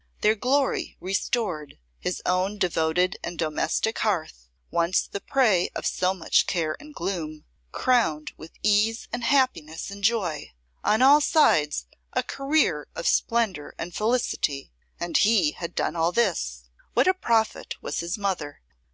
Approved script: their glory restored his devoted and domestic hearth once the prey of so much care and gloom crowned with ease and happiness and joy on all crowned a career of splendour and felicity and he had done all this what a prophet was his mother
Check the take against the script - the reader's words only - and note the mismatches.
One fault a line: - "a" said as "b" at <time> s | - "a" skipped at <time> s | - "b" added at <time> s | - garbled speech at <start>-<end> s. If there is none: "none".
- "own" added at 2.2 s
- "crowned" said as "sides" at 11.2 s